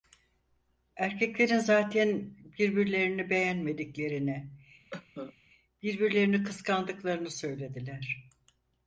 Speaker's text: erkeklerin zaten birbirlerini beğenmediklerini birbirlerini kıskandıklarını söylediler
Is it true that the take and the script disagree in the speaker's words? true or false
false